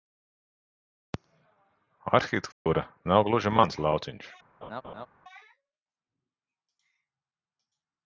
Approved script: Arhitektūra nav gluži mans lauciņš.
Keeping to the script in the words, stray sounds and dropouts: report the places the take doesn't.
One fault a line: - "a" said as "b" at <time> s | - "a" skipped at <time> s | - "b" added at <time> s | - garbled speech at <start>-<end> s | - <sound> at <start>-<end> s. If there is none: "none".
- dropout at 2.5-2.7 s
- laugh at 4.6-5.1 s